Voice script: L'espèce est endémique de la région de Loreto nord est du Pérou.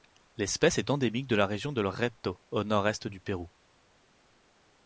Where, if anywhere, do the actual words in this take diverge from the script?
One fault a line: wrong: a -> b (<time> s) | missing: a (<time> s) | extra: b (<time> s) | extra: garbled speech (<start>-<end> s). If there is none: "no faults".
extra: au (2.5 s)